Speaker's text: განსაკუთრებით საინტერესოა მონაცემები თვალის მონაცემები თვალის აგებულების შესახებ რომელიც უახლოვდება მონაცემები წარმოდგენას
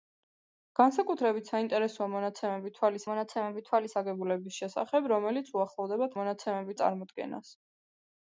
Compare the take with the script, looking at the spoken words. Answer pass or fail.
pass